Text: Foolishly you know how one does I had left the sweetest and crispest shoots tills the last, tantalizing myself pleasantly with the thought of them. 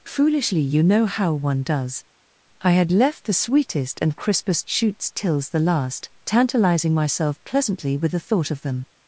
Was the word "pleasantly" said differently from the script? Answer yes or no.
no